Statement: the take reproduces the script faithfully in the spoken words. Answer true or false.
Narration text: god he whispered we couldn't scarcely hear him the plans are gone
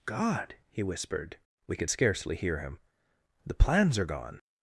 false